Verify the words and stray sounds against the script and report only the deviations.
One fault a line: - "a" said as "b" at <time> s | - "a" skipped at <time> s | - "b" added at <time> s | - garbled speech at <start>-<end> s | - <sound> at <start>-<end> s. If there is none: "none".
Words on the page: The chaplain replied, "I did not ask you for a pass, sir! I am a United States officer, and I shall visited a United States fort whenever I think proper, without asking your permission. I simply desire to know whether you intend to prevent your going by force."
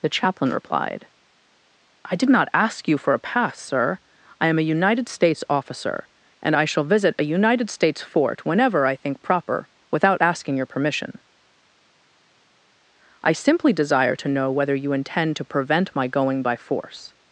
- "visited" said as "visit" at 6.9 s
- "your" said as "my" at 15.9 s